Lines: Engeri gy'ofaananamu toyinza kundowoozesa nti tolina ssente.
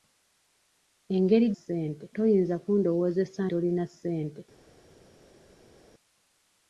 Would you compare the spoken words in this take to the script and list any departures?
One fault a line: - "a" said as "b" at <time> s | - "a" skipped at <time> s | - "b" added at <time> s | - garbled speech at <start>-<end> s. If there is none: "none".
- "gy'ofaananamu" said as "ssente" at 1.6 s
- "nti" skipped at 3.4 s